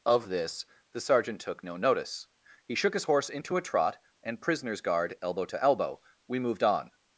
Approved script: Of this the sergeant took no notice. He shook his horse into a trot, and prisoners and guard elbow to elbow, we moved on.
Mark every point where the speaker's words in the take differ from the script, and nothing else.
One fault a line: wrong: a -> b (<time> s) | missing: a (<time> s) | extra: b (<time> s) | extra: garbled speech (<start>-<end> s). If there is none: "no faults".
missing: and (4.8 s)